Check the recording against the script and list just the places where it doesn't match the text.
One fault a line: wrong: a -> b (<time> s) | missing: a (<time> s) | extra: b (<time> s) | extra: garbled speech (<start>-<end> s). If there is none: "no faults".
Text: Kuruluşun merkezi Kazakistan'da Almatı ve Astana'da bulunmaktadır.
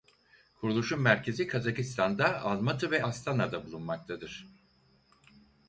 no faults